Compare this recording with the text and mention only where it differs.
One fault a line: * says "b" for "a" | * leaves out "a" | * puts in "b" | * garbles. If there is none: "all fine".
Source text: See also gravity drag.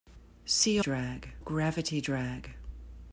* says "drag" for "also"